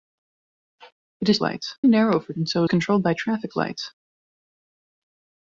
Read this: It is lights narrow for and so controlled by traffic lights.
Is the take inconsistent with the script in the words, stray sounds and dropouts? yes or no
no